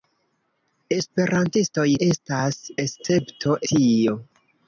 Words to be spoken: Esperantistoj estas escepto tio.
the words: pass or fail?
pass